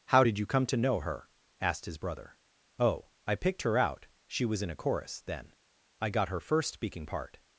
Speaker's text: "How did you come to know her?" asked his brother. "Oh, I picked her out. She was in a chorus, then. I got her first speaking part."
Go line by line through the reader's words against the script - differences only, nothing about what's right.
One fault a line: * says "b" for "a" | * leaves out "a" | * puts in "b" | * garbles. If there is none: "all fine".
all fine